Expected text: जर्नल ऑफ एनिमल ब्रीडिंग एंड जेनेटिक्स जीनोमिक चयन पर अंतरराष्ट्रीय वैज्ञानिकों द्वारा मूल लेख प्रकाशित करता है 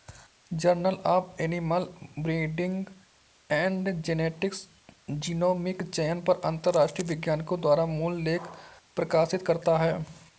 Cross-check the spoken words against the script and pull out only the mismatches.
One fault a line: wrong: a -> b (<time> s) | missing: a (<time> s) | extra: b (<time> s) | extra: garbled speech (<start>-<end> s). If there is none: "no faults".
no faults